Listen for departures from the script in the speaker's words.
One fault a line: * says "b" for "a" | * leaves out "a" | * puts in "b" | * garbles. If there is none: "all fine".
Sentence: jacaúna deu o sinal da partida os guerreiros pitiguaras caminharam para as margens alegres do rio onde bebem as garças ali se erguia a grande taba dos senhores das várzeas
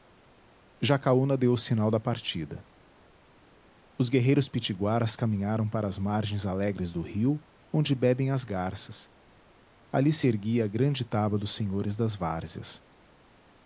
all fine